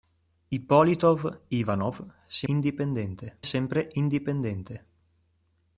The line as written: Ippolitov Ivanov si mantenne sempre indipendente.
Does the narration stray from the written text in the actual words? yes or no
yes